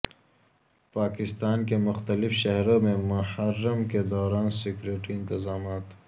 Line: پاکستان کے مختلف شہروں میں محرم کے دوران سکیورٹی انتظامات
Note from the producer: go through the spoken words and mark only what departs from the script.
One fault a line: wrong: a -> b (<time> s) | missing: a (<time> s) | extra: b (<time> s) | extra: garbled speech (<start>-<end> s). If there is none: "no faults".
no faults